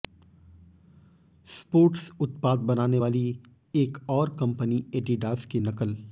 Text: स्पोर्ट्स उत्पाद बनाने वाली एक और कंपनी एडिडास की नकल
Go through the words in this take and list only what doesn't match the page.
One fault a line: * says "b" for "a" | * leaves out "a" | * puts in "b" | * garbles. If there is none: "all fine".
all fine